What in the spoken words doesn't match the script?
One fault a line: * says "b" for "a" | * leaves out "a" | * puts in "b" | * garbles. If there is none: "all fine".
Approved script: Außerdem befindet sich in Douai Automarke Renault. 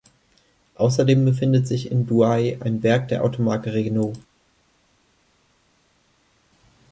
* puts in "ein Werk der"